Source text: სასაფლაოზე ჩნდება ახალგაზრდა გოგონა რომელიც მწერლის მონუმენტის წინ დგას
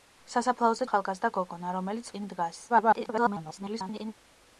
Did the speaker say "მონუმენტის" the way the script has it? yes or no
no